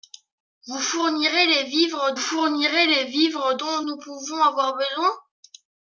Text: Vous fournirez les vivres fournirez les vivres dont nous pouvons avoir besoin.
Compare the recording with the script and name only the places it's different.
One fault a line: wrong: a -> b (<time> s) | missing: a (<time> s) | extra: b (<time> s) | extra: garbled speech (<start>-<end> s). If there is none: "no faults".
no faults